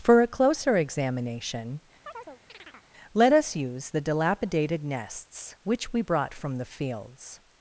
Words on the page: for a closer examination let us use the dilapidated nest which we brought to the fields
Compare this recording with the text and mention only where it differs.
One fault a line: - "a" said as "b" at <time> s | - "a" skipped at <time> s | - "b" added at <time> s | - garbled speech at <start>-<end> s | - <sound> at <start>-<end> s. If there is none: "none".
- chirp at 2.0-2.9 s
- "nest" said as "nests" at 4.8 s
- "to" said as "from" at 6.3 s